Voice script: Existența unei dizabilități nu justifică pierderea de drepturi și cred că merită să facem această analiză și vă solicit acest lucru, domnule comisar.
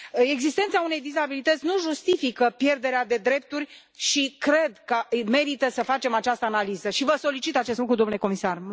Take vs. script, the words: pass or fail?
pass